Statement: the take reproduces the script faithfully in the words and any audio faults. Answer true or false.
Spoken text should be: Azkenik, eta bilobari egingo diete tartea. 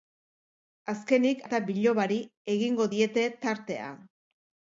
true